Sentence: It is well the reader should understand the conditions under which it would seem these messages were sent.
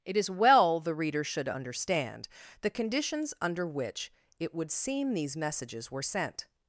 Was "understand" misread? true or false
false